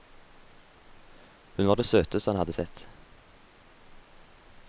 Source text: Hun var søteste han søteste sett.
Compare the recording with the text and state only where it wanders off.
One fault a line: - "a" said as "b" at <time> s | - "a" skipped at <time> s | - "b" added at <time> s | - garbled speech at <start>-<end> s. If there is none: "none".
- "det" added at 1.8 s
- "søteste" said as "hadde" at 2.4 s